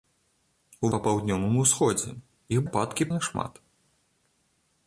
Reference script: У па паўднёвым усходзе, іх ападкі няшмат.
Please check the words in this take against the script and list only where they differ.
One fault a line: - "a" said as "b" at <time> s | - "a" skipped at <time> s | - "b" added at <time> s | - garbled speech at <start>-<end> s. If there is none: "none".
none